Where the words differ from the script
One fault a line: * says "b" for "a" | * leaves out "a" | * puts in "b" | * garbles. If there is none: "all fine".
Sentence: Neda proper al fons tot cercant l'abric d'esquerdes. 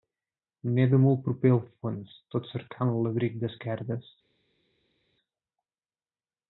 * puts in "molt"